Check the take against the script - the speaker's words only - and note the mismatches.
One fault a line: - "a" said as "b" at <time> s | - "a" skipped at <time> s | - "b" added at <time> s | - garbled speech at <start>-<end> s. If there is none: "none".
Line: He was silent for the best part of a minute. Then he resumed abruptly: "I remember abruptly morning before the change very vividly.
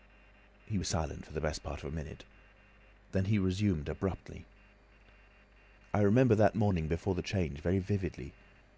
- "abruptly" said as "that" at 6.3 s